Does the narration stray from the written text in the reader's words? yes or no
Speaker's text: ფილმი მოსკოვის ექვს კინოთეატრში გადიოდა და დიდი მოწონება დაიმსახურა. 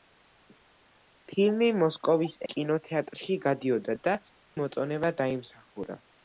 yes